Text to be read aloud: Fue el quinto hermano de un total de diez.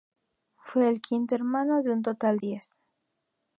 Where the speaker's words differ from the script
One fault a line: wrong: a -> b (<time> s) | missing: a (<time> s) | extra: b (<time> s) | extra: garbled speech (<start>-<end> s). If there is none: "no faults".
missing: de (2.4 s)